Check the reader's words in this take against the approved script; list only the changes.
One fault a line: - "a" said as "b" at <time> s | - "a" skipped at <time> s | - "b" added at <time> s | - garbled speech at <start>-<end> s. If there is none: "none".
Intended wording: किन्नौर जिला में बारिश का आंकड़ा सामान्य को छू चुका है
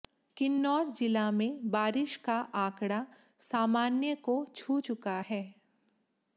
none